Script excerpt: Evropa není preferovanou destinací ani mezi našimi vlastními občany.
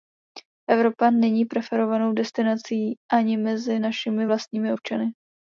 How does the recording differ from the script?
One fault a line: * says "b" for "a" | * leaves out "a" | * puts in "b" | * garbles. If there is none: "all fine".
all fine